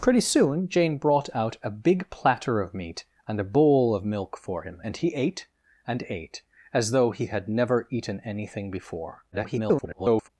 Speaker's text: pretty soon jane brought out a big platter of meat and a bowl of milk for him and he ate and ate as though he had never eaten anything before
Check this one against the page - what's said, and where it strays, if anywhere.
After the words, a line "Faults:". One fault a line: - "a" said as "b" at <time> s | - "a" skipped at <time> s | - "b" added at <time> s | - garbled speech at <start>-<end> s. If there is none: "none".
pretty soon jane brought out a big platter of meat and a bowl of milk for him and he ate and ate as though he had never eaten anything before [garbled]
Faults:
- garbled speech at 9.3-10.3 s